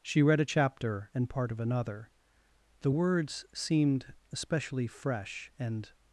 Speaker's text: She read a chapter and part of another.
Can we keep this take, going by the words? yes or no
no